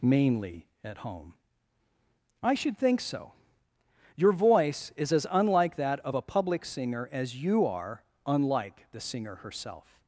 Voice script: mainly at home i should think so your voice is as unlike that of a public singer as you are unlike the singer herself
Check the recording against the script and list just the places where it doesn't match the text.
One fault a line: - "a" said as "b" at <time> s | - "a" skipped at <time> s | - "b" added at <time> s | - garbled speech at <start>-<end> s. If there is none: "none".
none